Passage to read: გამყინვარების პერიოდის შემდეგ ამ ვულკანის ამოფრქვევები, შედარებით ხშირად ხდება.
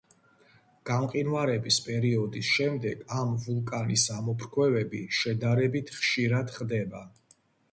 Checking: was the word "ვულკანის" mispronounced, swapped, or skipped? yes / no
no